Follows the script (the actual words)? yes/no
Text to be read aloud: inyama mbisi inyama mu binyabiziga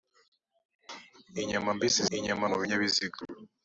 yes